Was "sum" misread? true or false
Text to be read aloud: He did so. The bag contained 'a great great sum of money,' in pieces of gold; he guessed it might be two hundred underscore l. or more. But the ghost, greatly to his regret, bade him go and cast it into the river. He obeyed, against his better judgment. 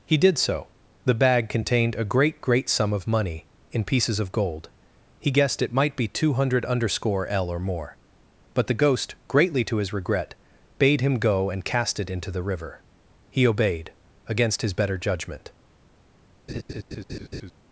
false